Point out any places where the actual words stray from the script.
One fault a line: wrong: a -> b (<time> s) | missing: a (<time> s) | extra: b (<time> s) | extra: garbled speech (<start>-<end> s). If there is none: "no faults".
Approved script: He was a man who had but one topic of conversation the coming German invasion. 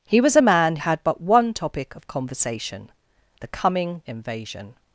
missing: who (0.8 s)
missing: German (4.0 s)